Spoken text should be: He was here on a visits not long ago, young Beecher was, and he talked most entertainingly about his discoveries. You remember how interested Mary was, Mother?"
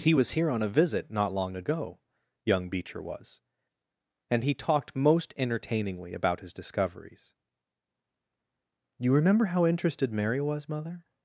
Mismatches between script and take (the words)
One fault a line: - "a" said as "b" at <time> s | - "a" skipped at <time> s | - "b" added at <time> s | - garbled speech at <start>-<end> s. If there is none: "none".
- "visits" said as "visit" at 0.7 s